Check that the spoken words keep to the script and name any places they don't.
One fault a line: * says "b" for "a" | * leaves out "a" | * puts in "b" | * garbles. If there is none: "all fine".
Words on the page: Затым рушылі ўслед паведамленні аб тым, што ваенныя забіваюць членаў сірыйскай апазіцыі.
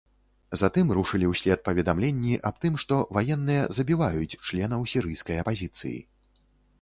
all fine